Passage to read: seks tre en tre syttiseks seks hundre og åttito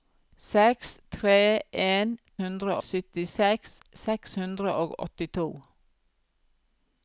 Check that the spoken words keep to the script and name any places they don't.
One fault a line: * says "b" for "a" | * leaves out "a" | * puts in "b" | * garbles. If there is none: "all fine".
* says "hundre" for "tre"